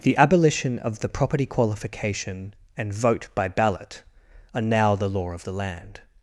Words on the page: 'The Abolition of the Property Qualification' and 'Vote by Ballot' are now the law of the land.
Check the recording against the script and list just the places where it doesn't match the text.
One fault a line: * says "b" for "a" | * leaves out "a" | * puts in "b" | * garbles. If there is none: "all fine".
all fine